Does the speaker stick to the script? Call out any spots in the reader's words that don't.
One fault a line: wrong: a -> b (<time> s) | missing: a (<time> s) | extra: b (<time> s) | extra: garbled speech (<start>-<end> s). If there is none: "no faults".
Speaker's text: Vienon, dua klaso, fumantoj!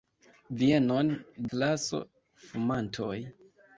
missing: dua (1.1 s)